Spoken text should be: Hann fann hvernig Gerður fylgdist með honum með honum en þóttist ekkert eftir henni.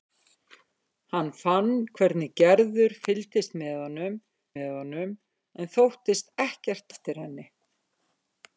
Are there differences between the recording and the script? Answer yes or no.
no